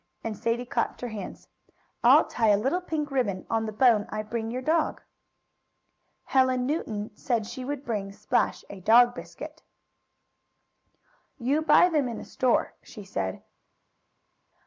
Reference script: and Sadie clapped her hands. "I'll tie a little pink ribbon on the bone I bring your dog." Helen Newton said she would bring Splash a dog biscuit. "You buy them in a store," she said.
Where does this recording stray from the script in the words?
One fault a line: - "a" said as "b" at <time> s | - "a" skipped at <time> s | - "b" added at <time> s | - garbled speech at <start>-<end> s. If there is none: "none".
none